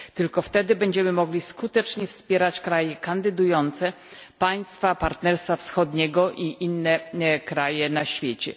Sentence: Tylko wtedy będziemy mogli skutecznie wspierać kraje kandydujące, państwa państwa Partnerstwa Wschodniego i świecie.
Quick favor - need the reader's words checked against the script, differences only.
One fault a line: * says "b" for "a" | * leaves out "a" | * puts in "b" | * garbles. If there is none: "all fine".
* leaves out "państwa"
* puts in "inne kraje na"